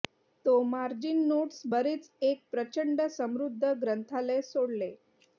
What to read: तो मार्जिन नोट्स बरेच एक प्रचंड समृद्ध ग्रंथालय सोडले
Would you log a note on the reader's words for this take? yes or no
no